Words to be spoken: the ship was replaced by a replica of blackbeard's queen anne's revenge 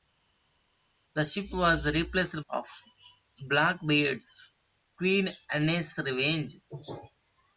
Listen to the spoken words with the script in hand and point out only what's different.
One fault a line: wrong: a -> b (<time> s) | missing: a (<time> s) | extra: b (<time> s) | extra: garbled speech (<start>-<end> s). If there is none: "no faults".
missing: by a replica (2.4 s)